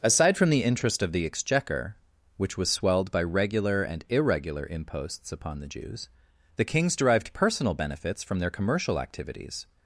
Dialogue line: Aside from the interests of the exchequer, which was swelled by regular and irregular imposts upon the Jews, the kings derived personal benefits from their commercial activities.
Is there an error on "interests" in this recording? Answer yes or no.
yes